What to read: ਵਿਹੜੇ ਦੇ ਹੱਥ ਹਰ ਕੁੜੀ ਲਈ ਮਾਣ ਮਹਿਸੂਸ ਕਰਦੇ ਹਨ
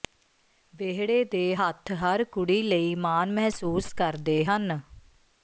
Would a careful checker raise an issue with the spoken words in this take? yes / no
no